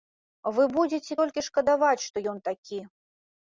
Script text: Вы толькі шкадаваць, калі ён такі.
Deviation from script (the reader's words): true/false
true